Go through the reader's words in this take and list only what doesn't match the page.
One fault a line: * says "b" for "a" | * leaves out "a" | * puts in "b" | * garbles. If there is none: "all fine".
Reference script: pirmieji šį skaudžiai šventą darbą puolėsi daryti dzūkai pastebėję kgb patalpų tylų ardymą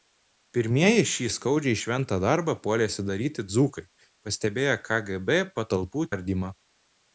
* leaves out "tylų"